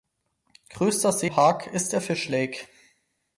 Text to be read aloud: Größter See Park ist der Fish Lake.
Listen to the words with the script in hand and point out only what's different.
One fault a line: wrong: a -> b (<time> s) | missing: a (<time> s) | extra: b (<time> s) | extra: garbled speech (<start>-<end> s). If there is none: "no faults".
no faults